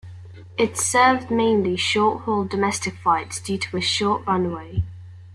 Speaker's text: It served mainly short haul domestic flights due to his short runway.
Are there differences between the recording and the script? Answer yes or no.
yes